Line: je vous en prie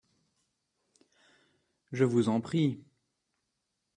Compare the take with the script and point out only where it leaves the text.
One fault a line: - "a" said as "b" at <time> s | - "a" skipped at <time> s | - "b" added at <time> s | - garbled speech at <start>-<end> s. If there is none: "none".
none